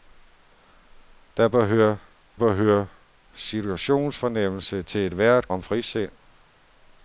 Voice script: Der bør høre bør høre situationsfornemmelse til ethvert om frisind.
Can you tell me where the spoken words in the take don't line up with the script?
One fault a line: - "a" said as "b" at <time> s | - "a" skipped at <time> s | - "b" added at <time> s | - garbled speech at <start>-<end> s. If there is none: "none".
none